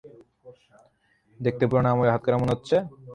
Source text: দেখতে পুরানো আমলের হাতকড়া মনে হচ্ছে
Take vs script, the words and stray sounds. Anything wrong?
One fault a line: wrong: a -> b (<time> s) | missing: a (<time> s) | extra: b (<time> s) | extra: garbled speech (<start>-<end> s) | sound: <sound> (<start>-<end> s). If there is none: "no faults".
no faults